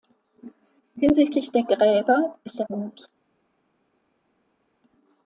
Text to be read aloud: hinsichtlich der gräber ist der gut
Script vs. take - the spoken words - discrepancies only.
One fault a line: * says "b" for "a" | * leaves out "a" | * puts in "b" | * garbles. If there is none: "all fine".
all fine